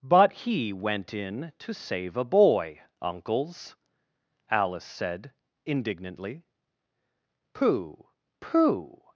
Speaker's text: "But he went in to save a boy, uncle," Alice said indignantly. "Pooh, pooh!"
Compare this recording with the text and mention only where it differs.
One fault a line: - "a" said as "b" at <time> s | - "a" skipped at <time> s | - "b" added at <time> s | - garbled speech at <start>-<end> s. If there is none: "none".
- "uncle" said as "uncles" at 3.0 s